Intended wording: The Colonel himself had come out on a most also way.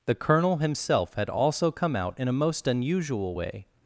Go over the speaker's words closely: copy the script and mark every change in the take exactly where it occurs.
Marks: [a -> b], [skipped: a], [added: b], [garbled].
The Colonel himself had [added: also] come out [on -> in] a most [also -> unusual] way.